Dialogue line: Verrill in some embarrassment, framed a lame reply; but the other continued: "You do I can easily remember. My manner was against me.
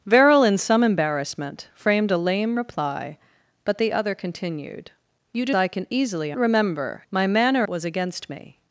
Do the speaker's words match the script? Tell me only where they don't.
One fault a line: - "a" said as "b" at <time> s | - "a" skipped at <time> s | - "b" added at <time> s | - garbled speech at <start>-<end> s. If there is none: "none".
none